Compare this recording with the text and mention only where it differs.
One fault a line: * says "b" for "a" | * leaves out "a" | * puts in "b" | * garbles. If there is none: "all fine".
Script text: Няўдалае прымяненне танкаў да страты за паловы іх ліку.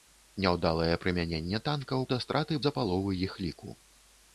all fine